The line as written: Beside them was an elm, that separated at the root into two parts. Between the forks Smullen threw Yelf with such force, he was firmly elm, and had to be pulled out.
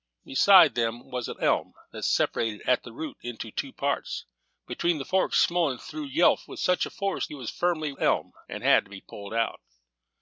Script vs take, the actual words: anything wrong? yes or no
no